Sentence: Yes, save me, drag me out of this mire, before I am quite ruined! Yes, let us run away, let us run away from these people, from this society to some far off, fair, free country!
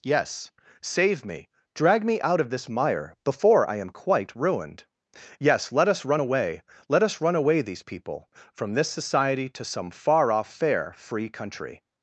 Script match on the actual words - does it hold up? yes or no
no